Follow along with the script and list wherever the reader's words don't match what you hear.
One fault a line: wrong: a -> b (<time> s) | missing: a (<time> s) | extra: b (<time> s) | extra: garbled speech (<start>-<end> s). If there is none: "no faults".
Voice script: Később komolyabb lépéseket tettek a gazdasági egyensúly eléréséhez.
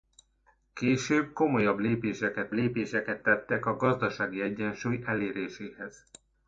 extra: lépéseket (2.5 s)